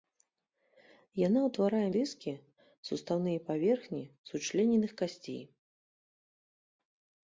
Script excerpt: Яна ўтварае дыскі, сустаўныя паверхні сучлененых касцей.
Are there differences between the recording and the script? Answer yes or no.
no